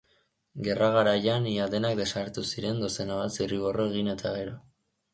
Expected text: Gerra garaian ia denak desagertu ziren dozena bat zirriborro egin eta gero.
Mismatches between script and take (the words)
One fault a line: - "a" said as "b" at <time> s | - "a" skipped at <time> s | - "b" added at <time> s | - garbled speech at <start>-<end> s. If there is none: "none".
none